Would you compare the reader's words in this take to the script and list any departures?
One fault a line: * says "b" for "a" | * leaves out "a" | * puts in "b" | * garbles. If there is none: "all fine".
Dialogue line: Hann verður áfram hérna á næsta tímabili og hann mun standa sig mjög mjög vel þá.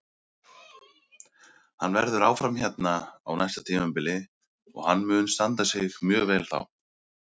* leaves out "mjög"